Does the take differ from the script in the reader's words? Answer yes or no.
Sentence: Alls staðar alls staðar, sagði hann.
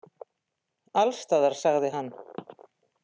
yes